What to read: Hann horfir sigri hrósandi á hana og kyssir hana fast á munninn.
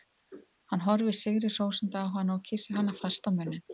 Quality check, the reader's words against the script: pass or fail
pass